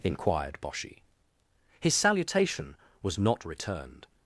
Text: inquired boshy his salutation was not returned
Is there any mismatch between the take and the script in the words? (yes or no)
no